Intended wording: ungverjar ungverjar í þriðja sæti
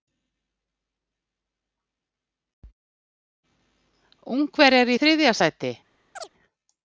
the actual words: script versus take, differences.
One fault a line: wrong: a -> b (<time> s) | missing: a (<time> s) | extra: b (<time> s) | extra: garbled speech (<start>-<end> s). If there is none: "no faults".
missing: ungverjar (4.9 s)